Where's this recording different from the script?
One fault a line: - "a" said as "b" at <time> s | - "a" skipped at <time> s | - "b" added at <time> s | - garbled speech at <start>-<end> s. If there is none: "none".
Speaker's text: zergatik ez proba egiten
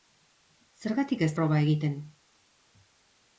none